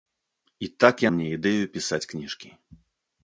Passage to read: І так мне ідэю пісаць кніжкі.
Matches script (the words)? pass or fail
pass